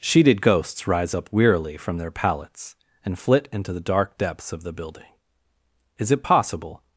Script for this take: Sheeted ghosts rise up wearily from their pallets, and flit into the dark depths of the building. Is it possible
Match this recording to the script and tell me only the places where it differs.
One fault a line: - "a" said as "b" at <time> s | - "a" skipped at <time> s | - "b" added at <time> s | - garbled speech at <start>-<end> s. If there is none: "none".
none